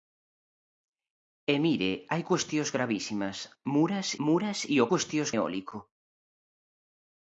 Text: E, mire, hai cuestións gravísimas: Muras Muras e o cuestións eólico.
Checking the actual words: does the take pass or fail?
pass